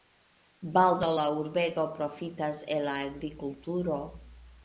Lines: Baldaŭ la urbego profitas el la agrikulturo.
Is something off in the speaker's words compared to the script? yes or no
no